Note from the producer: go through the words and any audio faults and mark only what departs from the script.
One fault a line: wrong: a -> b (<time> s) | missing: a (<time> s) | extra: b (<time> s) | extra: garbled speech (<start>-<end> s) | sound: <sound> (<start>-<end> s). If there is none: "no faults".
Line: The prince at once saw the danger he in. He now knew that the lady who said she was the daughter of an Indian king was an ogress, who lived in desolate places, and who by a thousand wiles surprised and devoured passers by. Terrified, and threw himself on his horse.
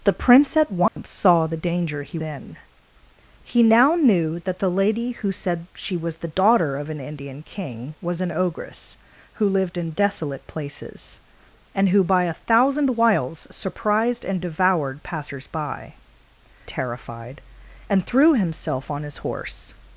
sound: dropout (0.9-1.0 s)